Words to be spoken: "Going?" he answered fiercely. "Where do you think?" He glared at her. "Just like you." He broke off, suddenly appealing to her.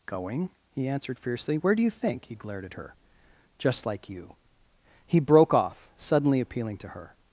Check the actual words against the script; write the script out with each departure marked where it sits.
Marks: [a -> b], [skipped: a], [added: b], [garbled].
"Going?" he answered fiercely. "Where do you think?" He glared at her. "Just like you." He broke off, suddenly appealing to her.